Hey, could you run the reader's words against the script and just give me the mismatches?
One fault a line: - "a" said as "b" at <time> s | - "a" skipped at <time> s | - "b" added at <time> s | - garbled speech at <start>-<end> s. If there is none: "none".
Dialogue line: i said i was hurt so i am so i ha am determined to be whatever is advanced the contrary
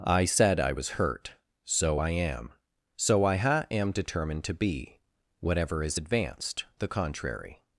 none